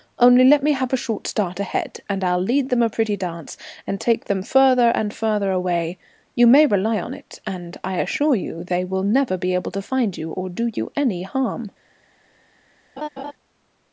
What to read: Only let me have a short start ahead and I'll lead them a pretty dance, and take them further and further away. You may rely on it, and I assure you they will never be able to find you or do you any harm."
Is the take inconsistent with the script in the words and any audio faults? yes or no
yes